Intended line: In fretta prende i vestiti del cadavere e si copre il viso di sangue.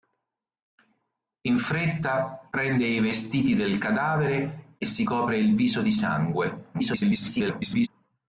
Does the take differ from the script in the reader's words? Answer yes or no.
yes